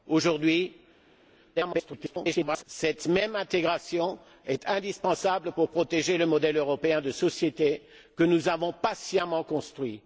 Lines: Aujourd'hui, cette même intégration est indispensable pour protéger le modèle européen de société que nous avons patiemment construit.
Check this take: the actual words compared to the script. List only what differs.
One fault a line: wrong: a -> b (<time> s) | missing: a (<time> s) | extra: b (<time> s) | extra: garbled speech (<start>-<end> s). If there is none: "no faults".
extra: garbled speech (1.6-2.6 s)